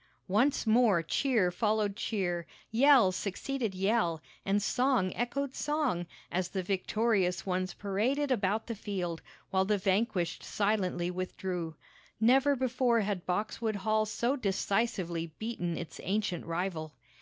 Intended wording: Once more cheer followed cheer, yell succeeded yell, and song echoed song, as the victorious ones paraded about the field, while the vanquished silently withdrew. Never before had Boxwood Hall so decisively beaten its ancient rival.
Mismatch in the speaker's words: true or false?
false